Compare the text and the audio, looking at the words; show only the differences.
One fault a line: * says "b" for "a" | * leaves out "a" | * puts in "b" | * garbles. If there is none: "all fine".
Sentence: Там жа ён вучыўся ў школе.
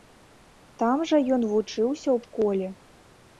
all fine